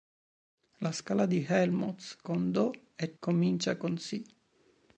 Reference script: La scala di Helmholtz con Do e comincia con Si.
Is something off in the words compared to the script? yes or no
no